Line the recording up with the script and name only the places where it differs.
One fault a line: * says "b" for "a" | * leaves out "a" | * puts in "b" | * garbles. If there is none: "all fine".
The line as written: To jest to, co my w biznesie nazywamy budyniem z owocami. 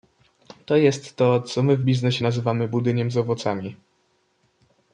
all fine